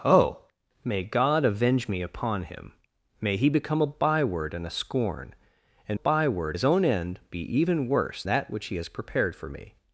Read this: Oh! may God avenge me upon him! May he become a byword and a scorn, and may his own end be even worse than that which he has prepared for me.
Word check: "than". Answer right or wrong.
wrong